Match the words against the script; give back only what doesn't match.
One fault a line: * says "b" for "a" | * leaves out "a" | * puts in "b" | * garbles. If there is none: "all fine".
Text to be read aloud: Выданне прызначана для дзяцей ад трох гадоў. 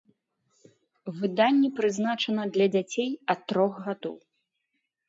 all fine